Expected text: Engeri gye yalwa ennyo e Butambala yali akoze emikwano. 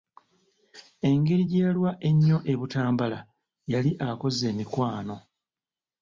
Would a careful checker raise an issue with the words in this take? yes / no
no